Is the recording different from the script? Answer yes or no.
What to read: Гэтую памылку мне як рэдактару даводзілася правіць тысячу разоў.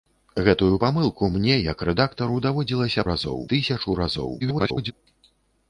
yes